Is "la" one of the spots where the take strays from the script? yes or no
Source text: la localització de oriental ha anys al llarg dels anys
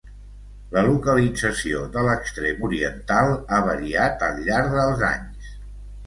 no